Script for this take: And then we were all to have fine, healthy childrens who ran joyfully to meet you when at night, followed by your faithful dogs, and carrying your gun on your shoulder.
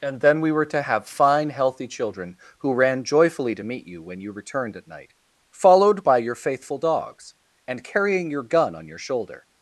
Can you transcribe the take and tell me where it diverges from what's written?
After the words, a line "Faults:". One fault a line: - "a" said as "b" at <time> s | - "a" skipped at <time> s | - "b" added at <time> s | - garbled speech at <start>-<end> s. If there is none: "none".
And then we were to have fine, healthy children who ran joyfully to meet you when you returned at night, followed by your faithful dogs, and carrying your gun on your shoulder.
Faults:
- "all" skipped at 0.7 s
- "childrens" said as "children" at 1.9 s
- "you returned" added at 4.2 s